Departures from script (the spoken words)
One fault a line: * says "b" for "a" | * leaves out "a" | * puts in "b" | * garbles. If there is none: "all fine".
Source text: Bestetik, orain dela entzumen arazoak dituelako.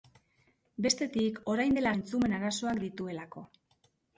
all fine